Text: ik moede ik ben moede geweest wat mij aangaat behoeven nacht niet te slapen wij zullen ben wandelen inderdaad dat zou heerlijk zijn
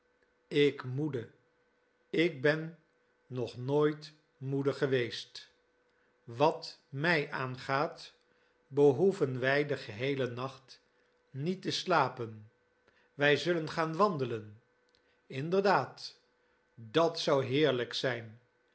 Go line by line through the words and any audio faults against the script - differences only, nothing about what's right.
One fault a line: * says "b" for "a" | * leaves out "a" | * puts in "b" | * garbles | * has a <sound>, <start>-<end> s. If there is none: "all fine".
* puts in "nog nooit"
* puts in "wij den geheelen"
* says "gaan" for "ben"